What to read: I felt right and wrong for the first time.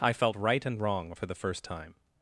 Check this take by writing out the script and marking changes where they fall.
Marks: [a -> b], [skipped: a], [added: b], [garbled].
I felt right and wrong for the first time.